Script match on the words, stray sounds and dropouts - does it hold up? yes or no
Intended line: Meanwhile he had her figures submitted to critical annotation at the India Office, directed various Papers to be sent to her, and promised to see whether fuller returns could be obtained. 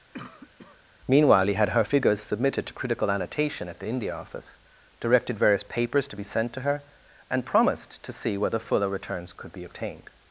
no